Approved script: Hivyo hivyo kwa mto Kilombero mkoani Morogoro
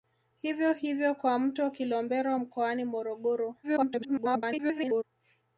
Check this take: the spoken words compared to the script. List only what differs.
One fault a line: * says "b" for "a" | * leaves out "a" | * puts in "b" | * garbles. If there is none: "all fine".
* garbles